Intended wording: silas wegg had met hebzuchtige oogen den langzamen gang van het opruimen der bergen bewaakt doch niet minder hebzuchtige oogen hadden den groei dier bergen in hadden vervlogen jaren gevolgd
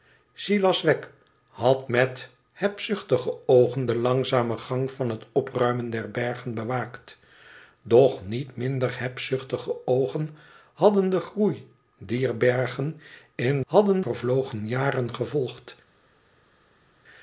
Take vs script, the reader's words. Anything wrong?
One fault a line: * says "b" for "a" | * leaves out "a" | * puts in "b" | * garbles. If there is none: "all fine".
all fine